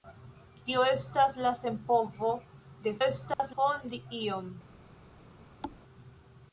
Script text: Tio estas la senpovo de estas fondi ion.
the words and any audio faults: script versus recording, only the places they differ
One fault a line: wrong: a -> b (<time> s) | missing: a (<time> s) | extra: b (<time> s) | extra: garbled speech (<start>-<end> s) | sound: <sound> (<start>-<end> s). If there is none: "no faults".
sound: dropout (3.3-3.4 s)
sound: thud (5.6-5.8 s)